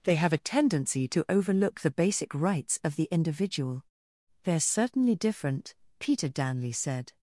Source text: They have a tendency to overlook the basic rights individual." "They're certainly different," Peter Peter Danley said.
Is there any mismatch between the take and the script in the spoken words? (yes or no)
yes